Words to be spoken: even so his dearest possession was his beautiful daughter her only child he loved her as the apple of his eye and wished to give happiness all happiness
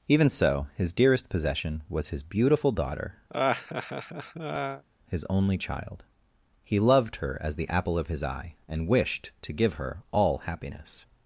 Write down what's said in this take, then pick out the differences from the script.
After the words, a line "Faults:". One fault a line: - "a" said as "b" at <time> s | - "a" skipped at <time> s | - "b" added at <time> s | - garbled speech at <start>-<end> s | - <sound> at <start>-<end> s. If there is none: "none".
even so his dearest possession was his beautiful daughter his only child he loved her as the apple of his eye and wished to give her all happiness
Faults:
- laugh at 3.3-4.8 s
- "her" said as "his" at 5.1 s
- "happiness" said as "her" at 9.7 s